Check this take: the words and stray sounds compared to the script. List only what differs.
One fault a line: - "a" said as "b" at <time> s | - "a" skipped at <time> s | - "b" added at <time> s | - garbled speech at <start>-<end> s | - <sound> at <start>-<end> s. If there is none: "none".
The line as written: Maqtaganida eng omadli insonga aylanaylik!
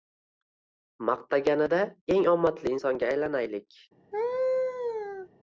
- laugh at 4.1-5.3 s